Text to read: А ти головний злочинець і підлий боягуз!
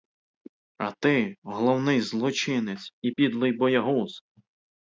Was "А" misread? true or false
false